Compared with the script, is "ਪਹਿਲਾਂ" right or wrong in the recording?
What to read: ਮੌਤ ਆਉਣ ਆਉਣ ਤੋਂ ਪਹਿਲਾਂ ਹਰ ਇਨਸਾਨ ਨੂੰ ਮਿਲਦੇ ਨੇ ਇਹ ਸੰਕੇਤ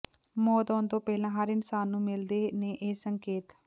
right